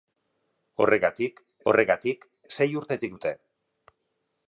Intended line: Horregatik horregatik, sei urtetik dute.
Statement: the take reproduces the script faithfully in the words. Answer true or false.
true